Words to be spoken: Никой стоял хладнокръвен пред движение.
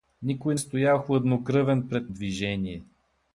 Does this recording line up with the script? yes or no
yes